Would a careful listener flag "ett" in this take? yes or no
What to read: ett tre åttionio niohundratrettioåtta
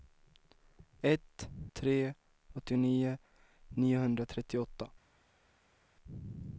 no